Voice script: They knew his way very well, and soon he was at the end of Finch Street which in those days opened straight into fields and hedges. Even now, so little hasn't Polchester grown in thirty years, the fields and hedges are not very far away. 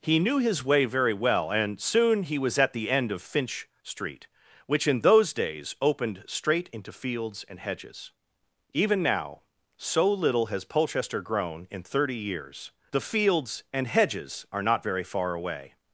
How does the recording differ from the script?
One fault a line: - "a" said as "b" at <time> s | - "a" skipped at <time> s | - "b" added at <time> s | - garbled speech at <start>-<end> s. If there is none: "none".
- "They" said as "He" at 0.0 s
- "hasn't" said as "has" at 10.5 s